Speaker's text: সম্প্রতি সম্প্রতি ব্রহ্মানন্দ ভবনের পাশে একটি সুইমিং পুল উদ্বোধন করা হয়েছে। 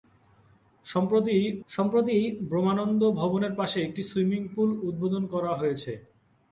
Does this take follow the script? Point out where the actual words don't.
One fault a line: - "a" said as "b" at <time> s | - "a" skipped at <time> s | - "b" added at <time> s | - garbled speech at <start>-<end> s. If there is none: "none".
none